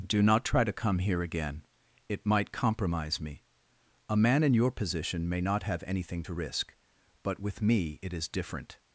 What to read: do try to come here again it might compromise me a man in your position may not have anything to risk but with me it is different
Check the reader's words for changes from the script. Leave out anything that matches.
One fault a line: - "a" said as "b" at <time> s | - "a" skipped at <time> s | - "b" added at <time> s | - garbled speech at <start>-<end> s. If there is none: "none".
- "not" added at 0.2 s